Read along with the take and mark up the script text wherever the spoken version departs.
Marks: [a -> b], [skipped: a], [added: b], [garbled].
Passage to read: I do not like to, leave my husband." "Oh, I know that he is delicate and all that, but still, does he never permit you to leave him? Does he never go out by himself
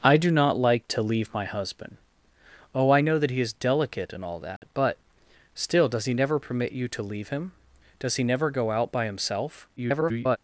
I do not like to, leave my husband." "Oh, I know that he is delicate and all that, but still, does he never permit you to leave him? Does he never go out by himself [garbled]